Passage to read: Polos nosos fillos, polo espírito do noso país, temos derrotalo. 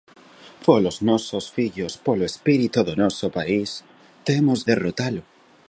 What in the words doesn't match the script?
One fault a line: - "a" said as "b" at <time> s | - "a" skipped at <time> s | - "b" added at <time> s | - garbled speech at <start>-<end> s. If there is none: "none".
none